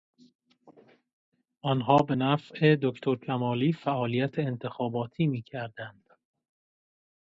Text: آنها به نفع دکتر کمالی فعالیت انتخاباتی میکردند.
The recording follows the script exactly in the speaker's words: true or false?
true